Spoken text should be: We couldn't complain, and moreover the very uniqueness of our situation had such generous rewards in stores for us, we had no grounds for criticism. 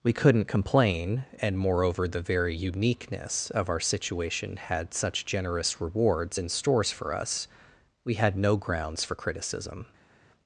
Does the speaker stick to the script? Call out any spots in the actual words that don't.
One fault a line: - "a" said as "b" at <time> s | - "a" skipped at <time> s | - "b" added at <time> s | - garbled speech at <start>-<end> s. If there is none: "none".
none